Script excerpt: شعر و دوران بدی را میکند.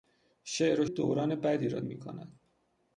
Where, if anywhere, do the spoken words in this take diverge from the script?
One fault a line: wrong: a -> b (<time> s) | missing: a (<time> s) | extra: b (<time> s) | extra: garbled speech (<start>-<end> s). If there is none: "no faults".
no faults